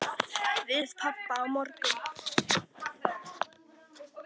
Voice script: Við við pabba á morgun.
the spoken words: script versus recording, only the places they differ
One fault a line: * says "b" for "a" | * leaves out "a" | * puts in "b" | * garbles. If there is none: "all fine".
all fine